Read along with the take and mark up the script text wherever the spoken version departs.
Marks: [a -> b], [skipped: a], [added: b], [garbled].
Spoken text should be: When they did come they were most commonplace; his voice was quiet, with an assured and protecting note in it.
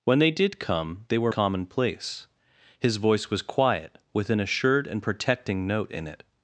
When they did come they were [skipped: most] commonplace; his voice was quiet, with an assured and protecting note in it.